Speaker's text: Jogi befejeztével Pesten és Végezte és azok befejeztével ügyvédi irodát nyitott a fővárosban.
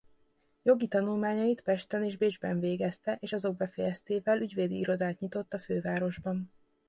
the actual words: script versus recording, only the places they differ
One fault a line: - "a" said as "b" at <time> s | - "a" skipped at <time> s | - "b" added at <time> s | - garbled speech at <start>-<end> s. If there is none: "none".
- "befejeztével" said as "tanulmányait" at 0.9 s
- "Bécsben" added at 2.1 s